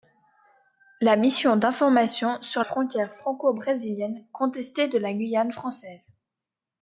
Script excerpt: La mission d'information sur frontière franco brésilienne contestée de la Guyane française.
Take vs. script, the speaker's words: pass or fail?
pass